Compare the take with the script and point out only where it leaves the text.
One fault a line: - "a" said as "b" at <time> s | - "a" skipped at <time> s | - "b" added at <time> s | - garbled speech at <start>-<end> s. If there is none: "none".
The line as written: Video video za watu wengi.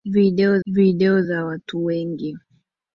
none